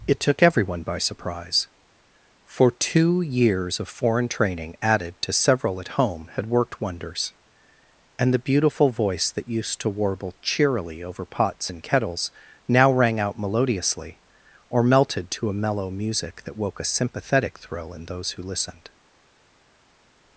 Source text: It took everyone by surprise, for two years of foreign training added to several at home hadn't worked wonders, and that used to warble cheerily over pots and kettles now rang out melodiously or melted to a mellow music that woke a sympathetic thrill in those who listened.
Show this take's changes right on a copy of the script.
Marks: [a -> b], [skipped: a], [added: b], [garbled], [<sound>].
It took everyone by surprise, for two years of foreign training added to several at home [hadn't -> had] worked wonders, and [added: the beautiful voice] that used to warble cheerily over pots and kettles now rang out melodiously or melted to a mellow music that woke a sympathetic thrill in those who listened.